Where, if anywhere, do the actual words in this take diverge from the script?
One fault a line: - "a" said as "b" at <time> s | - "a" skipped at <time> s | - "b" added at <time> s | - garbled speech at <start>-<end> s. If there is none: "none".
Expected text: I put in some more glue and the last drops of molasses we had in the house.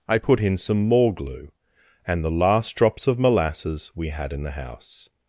none